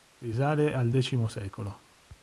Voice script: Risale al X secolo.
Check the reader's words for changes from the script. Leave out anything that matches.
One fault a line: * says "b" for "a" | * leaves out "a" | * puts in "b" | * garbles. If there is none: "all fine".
all fine